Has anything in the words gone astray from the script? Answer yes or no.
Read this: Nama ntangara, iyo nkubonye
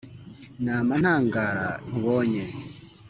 yes